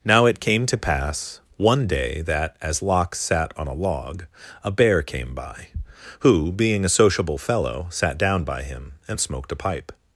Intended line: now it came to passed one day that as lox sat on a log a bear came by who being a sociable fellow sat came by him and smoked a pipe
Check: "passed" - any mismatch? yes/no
yes